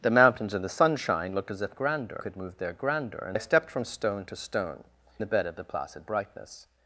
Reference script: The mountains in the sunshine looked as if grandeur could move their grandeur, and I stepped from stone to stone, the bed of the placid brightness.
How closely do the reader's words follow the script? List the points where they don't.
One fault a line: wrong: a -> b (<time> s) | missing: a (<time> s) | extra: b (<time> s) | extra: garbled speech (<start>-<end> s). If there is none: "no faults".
no faults